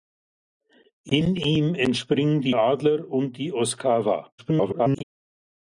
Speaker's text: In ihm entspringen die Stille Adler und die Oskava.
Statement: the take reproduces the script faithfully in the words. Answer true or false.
false